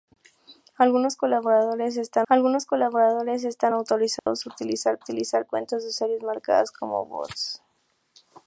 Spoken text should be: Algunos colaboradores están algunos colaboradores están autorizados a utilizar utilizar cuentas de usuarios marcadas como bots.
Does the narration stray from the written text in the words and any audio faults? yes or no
yes